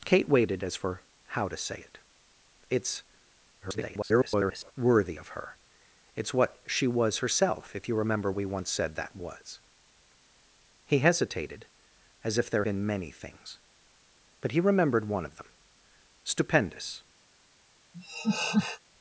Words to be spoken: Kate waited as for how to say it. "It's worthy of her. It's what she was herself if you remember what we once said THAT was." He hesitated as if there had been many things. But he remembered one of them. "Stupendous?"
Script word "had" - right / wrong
wrong